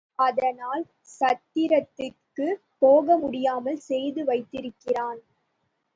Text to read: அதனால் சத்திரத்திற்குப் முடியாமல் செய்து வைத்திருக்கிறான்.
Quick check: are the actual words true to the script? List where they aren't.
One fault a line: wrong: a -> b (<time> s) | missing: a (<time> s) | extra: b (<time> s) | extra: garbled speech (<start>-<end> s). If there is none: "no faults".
extra: போக (2.8 s)